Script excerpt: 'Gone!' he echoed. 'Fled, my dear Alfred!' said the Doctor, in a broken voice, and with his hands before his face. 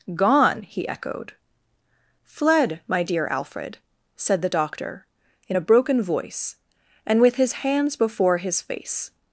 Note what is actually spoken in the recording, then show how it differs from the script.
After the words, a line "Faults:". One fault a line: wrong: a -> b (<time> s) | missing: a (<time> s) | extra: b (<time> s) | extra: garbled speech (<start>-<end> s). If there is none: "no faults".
'Gone!' he echoed. 'Fled, my dear Alfred!' said the Doctor, in a broken voice, and with his hands before his face.
Faults:
no faults